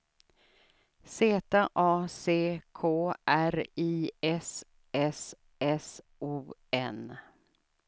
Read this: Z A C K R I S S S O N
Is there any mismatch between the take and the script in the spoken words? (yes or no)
no